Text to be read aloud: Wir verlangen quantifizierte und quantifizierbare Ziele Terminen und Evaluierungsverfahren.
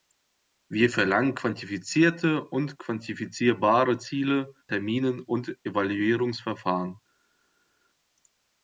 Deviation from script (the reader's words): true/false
false